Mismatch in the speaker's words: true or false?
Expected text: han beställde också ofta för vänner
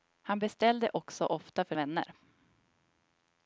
false